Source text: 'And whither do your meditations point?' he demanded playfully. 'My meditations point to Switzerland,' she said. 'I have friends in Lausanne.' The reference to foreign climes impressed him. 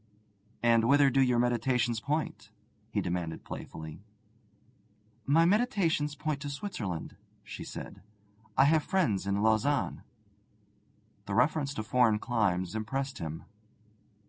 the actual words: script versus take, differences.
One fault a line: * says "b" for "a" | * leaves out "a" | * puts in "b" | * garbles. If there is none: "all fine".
all fine